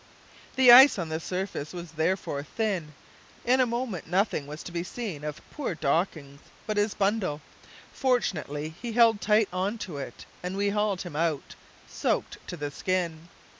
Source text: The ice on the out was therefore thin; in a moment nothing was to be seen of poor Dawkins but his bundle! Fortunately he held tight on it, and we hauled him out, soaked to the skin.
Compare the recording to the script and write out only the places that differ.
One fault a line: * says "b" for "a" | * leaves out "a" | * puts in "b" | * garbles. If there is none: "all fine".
* says "surface" for "out"
* puts in "to"